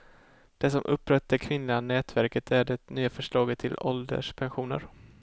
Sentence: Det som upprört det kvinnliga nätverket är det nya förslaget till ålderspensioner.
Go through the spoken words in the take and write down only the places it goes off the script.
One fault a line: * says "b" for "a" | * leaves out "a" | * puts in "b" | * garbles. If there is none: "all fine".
all fine